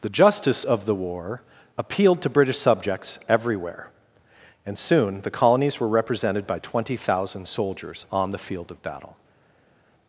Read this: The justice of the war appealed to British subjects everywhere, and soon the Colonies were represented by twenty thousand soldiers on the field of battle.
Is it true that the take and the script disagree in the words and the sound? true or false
false